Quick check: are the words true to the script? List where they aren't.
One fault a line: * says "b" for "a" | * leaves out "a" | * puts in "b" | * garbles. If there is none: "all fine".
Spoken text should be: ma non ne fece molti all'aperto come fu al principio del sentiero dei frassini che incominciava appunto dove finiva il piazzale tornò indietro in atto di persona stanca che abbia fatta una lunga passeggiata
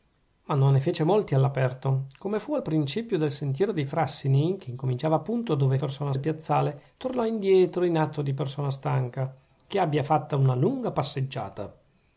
* says "persona" for "finiva"